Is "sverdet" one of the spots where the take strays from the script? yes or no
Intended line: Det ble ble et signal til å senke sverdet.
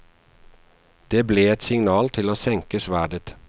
no